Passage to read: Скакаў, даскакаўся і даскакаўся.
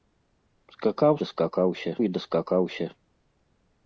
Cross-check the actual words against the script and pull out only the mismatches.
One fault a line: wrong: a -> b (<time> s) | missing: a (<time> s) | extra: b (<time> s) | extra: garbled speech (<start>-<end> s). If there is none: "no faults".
no faults